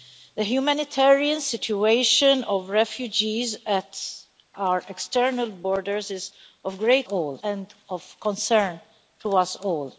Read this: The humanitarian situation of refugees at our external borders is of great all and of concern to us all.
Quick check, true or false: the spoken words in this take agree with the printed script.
true